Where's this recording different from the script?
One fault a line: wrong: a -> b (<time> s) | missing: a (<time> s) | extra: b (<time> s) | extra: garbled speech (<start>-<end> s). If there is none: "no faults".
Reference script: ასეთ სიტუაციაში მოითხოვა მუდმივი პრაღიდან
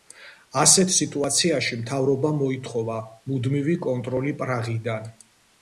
extra: მთავრობამ (1.8 s)
extra: კონტროლი (3.9 s)